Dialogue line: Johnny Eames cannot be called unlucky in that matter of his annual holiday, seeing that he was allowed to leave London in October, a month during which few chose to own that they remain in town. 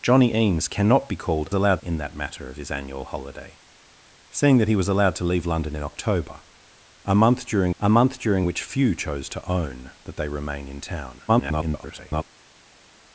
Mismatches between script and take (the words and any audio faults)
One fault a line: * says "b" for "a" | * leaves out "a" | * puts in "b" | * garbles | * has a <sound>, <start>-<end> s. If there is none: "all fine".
* says "allowed" for "unlucky"
* puts in "a month during"
* garbles